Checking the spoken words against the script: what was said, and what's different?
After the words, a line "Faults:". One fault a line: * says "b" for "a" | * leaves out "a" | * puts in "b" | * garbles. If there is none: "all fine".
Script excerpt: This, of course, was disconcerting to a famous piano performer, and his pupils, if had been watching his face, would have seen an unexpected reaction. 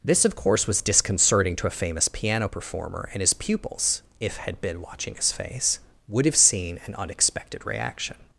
This, of course, was disconcerting to a famous piano performer, and his pupils, if had been watching his face, would have seen an unexpected reaction.
Faults:
all fine